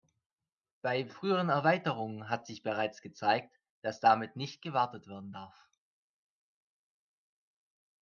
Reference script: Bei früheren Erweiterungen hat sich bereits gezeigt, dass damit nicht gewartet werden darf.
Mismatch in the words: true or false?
false